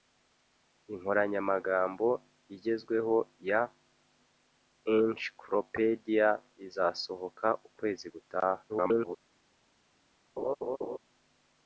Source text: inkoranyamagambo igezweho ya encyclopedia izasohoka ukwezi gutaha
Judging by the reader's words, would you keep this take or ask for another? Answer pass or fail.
fail